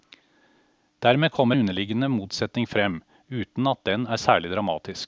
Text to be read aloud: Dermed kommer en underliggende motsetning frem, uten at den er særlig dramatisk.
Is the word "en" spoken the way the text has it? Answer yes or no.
no